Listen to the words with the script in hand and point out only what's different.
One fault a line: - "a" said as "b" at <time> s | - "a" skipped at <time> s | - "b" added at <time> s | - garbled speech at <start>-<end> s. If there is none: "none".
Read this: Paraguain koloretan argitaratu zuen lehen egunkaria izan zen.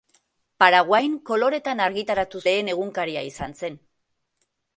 - "zuen" skipped at 2.4 s